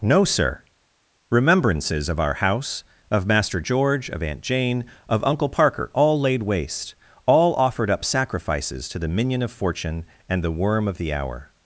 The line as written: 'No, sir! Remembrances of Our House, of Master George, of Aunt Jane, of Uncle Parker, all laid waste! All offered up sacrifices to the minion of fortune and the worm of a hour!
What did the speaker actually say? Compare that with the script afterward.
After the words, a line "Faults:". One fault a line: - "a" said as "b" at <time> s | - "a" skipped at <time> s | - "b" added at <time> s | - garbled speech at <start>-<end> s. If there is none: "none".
'No, sir! Remembrances of Our House, of Master George, of Aunt Jane, of Uncle Parker, all laid waste! All offered up sacrifices to the minion of fortune and the worm of the hour!
Faults:
- "a" said as "the" at 11.0 s